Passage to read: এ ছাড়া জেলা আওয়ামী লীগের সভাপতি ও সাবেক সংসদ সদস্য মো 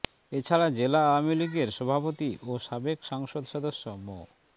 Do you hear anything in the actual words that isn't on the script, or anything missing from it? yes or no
no